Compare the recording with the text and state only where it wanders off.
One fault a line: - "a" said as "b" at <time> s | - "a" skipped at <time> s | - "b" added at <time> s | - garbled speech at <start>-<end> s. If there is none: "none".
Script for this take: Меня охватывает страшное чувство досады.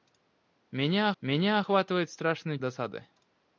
- "меня" added at 1.2 s
- "чувство" skipped at 2.6 s